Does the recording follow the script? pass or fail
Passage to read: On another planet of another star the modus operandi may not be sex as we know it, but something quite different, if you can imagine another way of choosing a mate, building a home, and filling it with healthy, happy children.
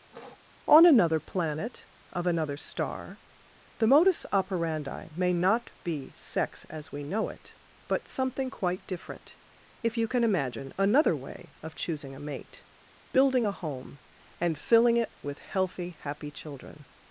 pass